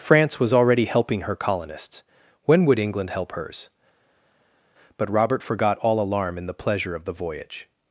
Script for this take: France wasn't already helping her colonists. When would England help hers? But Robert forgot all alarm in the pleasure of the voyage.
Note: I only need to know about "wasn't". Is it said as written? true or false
false